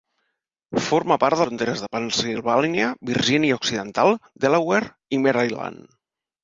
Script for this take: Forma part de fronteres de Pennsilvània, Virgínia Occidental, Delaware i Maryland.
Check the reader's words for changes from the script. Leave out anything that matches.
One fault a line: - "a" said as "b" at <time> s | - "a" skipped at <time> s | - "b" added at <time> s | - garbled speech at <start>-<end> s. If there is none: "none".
none